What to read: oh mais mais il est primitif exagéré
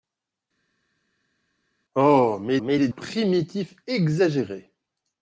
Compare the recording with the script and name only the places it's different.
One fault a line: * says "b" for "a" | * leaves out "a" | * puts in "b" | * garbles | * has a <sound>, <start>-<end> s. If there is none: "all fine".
all fine